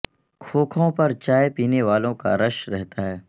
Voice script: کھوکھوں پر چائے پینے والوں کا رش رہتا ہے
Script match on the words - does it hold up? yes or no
yes